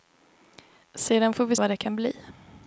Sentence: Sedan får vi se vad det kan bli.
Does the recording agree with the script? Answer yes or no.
no